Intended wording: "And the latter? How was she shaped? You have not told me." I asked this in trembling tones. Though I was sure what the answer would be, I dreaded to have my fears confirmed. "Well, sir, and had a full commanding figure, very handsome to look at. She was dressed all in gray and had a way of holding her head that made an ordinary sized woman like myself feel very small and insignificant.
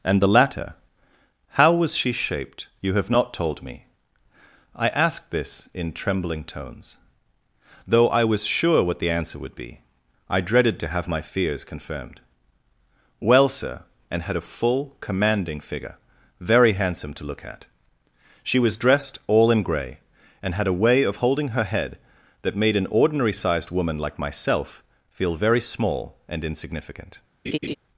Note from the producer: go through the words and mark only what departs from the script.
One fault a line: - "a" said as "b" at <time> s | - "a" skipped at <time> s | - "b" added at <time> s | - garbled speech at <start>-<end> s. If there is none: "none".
none